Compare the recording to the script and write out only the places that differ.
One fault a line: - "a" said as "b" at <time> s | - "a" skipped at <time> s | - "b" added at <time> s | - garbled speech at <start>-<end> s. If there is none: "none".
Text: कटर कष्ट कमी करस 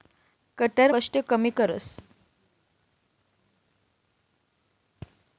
none